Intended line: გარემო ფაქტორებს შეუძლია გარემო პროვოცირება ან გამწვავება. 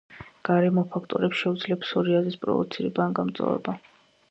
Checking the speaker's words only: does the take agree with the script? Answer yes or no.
no